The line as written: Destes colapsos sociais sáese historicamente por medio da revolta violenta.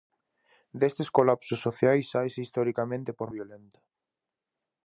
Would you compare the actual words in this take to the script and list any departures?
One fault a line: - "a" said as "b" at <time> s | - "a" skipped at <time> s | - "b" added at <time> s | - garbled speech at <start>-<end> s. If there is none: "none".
- "medio da revolta" skipped at 3.3 s